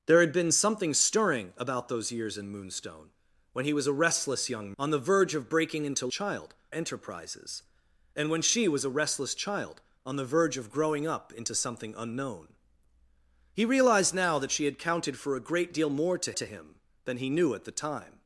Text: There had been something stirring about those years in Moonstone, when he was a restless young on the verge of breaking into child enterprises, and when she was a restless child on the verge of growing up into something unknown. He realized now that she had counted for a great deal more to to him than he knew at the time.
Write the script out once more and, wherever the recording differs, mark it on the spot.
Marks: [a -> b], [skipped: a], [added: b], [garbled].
There had been something stirring about those years in Moonstone, when he was a restless young on the verge of breaking into child enterprises, and when she was a restless child on the verge of growing up into something unknown. He realized now that she had counted for a great deal more to to him than he knew at the time.